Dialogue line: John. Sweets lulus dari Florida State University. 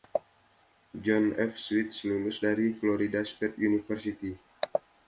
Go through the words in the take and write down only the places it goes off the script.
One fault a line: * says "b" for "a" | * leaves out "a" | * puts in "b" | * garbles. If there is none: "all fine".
* puts in "F"